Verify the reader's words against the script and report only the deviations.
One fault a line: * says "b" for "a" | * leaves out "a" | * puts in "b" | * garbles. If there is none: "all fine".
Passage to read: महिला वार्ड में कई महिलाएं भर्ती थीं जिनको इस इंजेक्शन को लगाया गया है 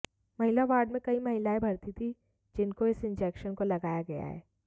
all fine